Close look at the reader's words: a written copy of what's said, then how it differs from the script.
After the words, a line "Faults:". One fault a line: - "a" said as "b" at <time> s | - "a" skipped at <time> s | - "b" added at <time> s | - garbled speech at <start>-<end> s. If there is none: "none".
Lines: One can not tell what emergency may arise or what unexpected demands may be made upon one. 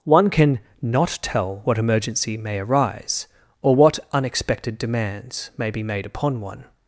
One can not tell what emergency may arise or what unexpected demands may be made upon one.
Faults:
none